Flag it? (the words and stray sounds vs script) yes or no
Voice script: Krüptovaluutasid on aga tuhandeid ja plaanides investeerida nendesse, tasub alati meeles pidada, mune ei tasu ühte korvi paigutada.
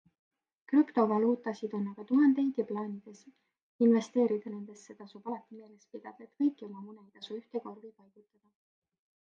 yes